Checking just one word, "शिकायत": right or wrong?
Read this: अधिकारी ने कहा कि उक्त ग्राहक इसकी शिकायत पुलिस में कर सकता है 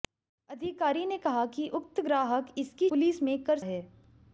wrong